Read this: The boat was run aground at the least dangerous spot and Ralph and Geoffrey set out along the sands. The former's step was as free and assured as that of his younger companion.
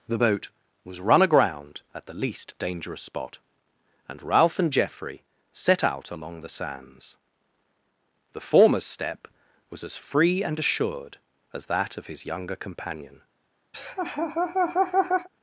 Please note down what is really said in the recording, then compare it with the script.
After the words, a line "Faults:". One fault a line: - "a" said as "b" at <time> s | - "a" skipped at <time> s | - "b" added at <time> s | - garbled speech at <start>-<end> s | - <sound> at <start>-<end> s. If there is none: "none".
The boat was run aground at the least dangerous spot and Ralph and Geoffrey set out along the sands. The former's step was as free and assured as that of his younger companion.
Faults:
- laugh at 13.7-15.3 s